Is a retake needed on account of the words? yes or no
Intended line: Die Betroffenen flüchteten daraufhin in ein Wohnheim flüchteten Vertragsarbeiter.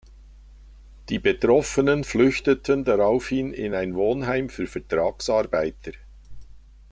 yes